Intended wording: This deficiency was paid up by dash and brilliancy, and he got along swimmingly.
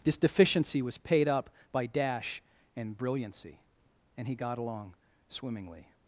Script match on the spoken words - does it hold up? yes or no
yes